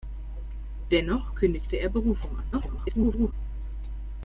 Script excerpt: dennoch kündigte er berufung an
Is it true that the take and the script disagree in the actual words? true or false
true